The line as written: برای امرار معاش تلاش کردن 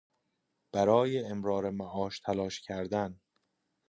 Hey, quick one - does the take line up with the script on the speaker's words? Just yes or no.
yes